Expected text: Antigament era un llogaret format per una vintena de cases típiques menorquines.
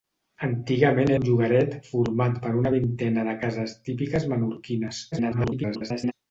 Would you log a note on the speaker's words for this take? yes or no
yes